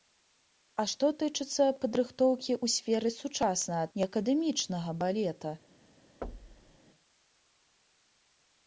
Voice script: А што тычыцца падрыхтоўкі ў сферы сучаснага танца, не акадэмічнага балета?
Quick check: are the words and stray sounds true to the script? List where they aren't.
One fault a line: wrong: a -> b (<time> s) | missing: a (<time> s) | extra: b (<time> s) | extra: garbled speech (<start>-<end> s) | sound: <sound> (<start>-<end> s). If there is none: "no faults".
missing: танца (3.9 s)
sound: thud (6.2-6.8 s)